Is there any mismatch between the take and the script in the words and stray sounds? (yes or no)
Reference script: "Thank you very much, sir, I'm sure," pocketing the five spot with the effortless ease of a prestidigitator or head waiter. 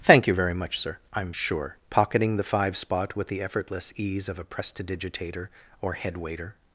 no